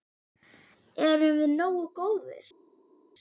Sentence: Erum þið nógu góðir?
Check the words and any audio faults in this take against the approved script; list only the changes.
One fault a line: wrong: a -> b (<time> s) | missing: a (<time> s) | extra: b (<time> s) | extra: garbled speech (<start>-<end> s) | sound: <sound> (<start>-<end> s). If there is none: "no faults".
wrong: þið -> við (1.4 s)